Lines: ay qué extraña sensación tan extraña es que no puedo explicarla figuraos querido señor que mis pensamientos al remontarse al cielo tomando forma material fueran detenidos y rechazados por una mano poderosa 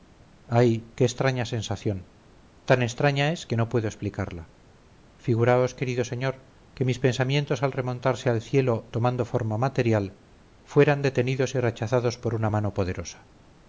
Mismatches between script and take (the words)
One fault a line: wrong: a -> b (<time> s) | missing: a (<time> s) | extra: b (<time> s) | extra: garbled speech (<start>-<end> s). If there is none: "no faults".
no faults